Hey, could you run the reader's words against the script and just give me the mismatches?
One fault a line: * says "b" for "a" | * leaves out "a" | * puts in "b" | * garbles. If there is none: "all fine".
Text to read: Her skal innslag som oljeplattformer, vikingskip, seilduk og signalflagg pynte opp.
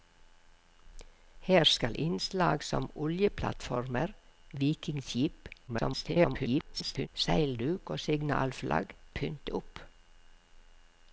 * garbles